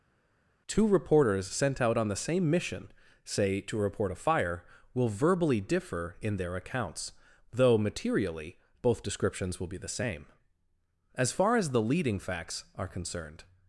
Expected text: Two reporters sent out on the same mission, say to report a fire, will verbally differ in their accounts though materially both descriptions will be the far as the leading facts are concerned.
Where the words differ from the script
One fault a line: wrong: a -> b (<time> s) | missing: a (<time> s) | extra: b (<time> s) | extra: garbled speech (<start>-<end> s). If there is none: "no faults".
extra: same as (9.9 s)